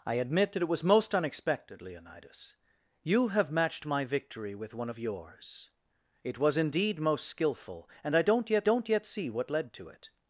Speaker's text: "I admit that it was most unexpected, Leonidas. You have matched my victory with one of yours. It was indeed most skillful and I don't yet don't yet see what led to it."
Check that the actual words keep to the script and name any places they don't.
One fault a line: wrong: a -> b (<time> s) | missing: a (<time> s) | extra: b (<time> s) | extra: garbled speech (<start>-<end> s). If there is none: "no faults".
no faults